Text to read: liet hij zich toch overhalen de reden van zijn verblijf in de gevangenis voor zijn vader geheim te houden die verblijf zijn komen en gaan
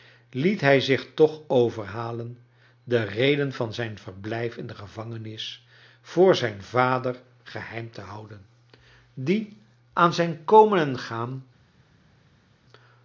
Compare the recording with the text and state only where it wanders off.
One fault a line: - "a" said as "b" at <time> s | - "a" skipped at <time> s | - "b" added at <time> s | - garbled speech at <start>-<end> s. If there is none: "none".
- "verblijf" said as "aan" at 9.9 s